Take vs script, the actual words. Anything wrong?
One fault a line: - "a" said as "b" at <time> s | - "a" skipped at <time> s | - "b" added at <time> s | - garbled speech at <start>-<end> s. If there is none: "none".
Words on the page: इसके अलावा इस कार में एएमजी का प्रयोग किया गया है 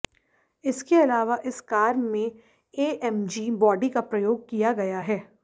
- "बॉडी" added at 3.5 s